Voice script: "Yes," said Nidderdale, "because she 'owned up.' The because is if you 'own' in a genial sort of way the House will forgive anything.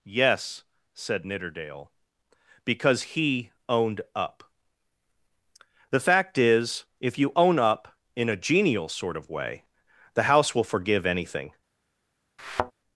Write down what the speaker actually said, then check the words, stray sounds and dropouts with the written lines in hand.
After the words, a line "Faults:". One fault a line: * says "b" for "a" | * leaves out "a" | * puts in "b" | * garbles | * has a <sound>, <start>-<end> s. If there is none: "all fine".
"Yes," said Nidderdale, "because he 'owned up.' The fact is if you 'own up' in a genial sort of way the House will forgive anything.
Faults:
* says "he" for "she"
* says "fact" for "because"
* puts in "up"
* has a thud, 12.4-12.7 s